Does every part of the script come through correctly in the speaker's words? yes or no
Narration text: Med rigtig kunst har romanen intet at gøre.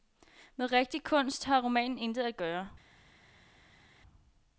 yes